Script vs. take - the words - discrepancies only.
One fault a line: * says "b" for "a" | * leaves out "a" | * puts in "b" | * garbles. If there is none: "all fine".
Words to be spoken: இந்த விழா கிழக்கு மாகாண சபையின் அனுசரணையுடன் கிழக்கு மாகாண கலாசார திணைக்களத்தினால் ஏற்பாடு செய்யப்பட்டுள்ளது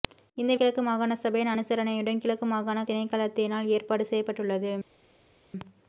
* leaves out "விழா"
* leaves out "கலாசார"